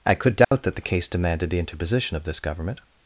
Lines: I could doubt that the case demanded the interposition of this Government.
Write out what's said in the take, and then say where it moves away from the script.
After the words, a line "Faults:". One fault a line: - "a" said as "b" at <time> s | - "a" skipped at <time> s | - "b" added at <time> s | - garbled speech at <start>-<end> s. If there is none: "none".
I could doubt that the case demanded the interposition of this Government.
Faults:
none